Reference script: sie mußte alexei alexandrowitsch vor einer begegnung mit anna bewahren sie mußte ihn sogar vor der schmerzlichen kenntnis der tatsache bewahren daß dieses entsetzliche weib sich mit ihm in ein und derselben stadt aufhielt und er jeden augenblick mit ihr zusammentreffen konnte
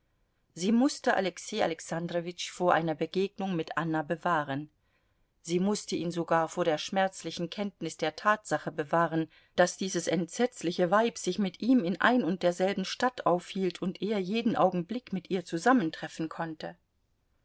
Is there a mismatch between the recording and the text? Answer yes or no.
no